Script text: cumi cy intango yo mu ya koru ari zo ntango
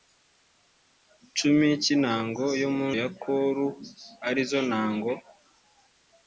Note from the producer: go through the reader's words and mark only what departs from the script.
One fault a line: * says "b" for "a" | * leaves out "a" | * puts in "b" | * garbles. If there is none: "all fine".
all fine